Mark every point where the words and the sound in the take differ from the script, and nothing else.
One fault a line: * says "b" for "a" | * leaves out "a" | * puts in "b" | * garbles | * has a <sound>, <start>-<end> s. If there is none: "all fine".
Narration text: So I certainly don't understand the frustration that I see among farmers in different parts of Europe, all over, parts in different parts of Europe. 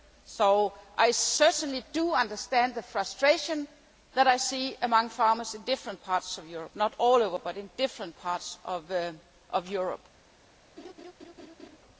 * says "do" for "don't"
* puts in "not"
* says "but" for "parts"
* has a laugh, 10.8-11.8 s